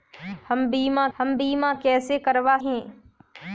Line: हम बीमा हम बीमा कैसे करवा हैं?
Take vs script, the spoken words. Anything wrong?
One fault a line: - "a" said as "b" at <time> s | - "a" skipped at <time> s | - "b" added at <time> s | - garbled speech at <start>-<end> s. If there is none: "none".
none